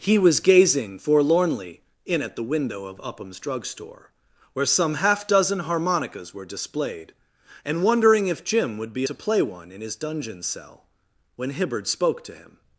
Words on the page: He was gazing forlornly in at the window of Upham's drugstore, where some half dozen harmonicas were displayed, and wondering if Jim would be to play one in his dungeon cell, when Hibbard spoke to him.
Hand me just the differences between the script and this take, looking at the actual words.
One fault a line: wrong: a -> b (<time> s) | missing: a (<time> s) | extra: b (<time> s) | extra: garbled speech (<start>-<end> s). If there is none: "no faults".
no faults